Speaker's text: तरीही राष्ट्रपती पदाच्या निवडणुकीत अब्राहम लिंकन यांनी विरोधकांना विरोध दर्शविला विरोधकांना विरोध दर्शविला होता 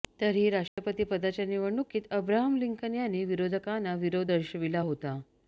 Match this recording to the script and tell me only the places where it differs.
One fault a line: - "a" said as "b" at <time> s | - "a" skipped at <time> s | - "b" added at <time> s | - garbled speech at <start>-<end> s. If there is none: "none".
- "विरोधकांना विरोध दर्शविला" skipped at 4.8 s